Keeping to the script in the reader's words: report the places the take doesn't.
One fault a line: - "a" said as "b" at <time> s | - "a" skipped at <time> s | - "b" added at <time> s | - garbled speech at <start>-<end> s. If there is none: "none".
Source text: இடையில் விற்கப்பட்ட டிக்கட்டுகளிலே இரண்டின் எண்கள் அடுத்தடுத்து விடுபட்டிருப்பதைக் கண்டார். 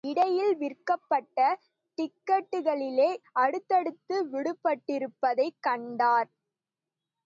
- "இரண்டின் எண்கள்" skipped at 3.1 s